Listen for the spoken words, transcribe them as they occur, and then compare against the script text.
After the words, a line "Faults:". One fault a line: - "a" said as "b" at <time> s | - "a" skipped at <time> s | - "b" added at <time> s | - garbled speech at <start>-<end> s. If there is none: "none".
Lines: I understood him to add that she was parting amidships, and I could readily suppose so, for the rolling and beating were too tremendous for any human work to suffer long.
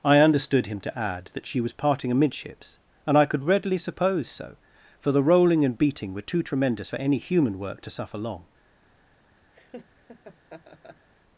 I understood him to add that she was parting amidships, and I could readily suppose so, for the rolling and beating were too tremendous for any human work to suffer long.
Faults:
none